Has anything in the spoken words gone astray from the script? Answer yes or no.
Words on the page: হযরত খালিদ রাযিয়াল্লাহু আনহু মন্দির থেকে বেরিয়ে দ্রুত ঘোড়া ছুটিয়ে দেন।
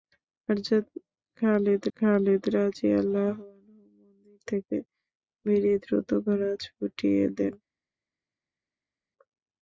yes